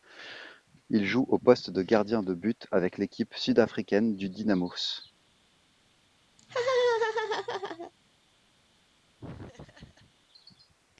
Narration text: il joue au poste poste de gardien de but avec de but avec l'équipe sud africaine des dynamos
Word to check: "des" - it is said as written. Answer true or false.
false